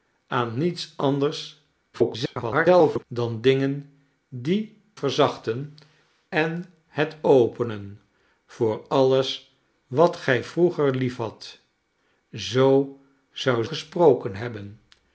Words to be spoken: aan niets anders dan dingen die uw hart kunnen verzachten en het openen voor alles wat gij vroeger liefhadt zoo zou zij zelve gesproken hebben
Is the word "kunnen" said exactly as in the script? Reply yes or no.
no